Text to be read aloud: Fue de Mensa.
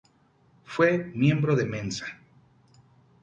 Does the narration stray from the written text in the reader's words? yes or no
yes